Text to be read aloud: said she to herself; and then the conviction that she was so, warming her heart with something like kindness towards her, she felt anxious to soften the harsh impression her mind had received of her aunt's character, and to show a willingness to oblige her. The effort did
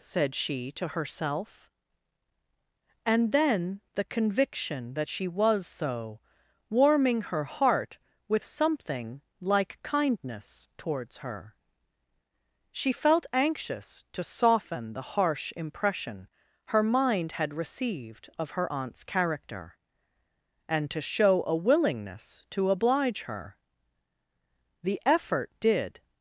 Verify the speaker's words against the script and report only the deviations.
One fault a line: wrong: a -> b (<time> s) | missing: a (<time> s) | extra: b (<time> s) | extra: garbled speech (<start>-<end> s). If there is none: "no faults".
no faults